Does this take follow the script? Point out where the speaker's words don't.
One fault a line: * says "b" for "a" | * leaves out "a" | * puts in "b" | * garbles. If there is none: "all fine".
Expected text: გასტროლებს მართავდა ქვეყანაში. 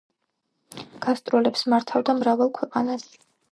* puts in "მრავალ"